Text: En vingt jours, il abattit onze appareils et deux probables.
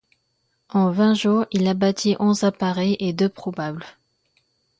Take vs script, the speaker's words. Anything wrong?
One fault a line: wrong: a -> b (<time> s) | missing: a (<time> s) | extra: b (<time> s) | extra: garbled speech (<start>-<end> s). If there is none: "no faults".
no faults